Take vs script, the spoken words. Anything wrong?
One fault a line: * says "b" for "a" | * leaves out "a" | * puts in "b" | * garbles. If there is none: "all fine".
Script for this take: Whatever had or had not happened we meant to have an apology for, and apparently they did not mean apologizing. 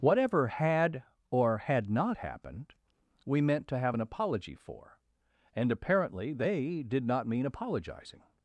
all fine